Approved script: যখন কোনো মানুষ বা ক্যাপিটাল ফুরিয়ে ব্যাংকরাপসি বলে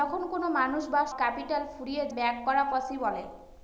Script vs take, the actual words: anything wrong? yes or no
no